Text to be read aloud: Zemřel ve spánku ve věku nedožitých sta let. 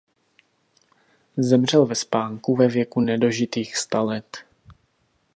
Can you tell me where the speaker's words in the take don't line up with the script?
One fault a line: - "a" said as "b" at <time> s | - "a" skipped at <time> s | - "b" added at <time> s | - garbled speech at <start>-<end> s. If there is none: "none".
none